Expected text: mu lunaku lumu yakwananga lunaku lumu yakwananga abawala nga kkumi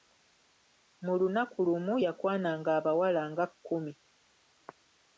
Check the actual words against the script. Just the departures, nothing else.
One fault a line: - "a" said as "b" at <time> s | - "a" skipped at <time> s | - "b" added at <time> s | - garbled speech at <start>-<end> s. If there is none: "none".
- "lunaku lumu yakwananga" skipped at 2.7 s